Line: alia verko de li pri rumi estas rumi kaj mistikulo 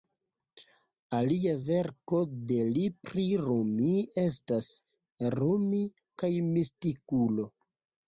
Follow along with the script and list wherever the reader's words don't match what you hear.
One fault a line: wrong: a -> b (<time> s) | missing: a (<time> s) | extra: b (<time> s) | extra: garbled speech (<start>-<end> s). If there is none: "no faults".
no faults